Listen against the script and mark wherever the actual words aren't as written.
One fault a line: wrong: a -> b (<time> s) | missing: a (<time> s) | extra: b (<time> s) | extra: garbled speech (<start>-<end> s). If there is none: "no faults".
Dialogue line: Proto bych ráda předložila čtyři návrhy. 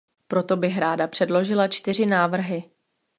no faults